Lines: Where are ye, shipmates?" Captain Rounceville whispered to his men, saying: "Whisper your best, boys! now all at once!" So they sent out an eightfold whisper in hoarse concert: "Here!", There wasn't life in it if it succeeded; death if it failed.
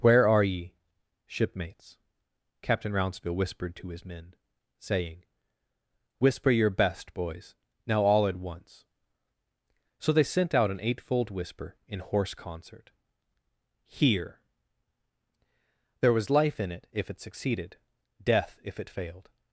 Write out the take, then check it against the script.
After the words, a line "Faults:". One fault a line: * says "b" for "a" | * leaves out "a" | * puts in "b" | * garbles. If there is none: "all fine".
Where are ye, shipmates?" Captain Rounceville whispered to his men, saying: "Whisper your best, boys! now all at once!" So they sent out an eightfold whisper in hoarse concert: "Here!", There was life in it if it succeeded; death if it failed.
Faults:
* says "was" for "wasn't"